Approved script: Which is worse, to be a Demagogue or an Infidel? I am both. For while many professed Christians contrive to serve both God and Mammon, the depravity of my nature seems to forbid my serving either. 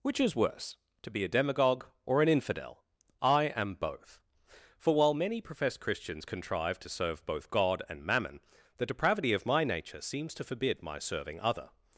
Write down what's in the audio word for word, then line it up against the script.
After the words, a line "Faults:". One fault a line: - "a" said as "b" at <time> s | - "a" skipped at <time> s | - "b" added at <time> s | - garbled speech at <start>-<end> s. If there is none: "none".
Which is worse, to be a Demagogue or an Infidel? I am both. For while many professed Christians contrive to serve both God and Mammon, the depravity of my nature seems to forbid my serving other.
Faults:
- "either" said as "other" at 11.4 s